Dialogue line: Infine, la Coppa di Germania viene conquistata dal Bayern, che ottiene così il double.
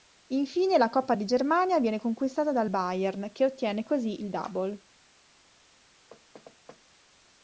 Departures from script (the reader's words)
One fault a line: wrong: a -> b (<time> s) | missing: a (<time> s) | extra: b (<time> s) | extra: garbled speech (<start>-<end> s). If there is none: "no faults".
no faults